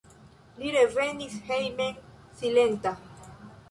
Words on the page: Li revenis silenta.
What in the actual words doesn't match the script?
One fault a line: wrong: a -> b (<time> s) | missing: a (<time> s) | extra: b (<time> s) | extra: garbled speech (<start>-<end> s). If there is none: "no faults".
extra: hejmen (1.5 s)